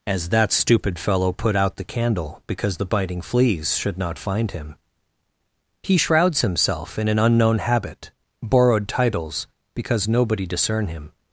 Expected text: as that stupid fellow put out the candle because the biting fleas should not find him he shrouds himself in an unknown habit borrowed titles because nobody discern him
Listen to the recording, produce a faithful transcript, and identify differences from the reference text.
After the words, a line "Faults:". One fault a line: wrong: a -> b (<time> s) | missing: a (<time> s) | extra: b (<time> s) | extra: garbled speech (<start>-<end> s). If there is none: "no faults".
as that stupid fellow put out the candle because the biting fleas should not find him he shrouds himself in an unknown habit borrowed titles because nobody discern him
Faults:
no faults